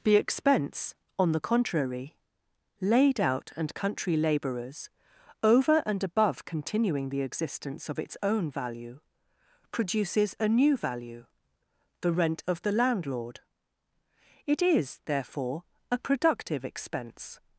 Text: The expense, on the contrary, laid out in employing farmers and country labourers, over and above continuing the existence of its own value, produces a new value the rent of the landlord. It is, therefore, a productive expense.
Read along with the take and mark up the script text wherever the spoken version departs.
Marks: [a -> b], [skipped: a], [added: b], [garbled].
The expense, on the contrary, laid out [skipped: in employing farmers] and country labourers, over and above continuing the existence of its own value, produces a new value the rent of the landlord. It is, therefore, a productive expense.